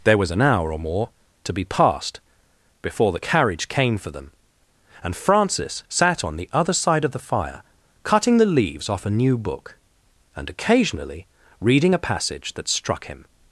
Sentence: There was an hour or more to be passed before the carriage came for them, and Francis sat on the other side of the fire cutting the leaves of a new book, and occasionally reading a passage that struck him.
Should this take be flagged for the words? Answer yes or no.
yes